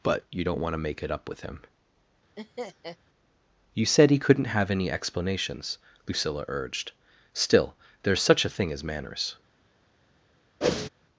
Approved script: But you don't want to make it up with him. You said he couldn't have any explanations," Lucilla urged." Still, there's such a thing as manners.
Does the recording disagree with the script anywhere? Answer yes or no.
no